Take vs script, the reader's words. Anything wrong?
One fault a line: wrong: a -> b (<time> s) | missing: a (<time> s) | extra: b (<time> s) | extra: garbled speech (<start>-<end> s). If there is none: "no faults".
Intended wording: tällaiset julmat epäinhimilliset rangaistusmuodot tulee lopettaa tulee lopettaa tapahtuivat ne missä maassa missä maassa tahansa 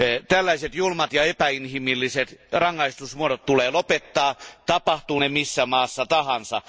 extra: ja (1.1 s)
missing: tulee lopettaa (4.3 s)
missing: missä maassa (6.1 s)